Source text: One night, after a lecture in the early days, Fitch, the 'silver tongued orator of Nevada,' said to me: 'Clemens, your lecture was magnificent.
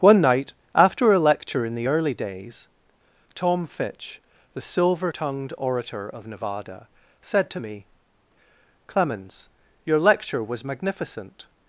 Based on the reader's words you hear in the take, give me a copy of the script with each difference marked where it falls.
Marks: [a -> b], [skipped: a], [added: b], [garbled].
One night, after a lecture in the early days, [added: Tom] Fitch, the 'silver tongued orator of Nevada,' said to me: 'Clemens, your lecture was magnificent.